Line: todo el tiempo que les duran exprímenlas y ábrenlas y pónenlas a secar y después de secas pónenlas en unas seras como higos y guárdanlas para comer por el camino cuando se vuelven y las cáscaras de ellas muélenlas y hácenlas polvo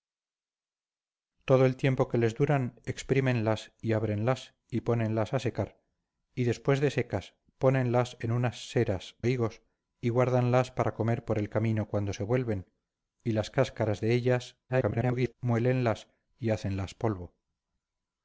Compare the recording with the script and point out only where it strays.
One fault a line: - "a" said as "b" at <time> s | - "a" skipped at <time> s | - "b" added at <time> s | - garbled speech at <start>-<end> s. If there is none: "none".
- "como" skipped at 9.2 s
- garbled speech at 14.7-15.3 s